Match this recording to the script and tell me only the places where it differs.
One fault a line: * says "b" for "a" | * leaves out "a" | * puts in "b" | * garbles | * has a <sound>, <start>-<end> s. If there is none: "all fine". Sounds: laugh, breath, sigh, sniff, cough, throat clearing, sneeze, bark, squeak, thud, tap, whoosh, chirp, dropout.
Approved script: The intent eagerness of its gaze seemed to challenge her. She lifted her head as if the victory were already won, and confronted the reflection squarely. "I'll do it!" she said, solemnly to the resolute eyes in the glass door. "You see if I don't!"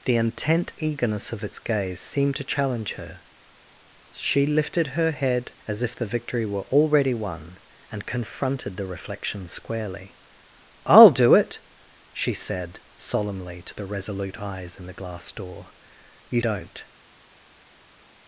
* leaves out "see if I"